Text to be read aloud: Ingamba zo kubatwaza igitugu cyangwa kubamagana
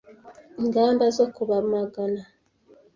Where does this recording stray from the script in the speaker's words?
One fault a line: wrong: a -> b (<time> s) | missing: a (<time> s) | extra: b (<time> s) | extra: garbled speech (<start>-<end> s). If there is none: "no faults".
missing: kubatwaza igitugu cyangwa (1.2 s)